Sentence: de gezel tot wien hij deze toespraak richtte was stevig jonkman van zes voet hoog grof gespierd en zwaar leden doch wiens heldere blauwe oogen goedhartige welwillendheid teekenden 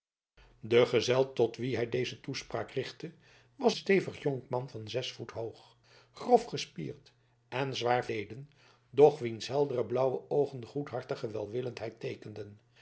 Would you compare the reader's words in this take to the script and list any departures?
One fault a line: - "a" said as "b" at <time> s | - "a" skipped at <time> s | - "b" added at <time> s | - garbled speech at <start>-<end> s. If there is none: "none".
none